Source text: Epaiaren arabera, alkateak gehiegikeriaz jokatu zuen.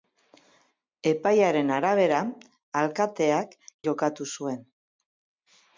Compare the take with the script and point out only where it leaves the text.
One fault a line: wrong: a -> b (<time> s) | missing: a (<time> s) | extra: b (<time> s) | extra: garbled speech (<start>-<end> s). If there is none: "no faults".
missing: gehiegikeriaz (3.5 s)